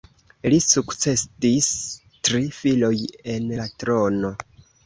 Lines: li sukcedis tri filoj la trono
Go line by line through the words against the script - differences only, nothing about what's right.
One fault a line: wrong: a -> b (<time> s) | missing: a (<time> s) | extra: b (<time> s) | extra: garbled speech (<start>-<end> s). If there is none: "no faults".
extra: en (3.4 s)